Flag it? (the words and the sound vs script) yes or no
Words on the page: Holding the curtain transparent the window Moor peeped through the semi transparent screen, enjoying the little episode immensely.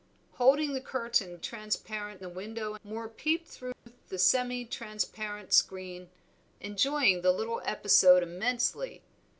yes